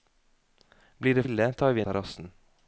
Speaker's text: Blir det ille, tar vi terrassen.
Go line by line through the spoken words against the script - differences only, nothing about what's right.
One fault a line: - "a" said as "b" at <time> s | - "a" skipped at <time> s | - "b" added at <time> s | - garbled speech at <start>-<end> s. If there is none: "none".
none